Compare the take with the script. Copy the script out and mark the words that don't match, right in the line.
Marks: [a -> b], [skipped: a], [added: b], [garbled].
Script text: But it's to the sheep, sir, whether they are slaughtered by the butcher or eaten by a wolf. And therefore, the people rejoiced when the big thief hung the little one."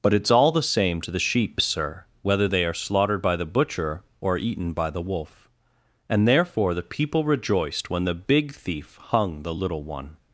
But it's [added: all the same] to the sheep, sir, whether they are slaughtered by the butcher or eaten by [a -> the] wolf. And therefore, the people rejoiced when the big thief hung the little one."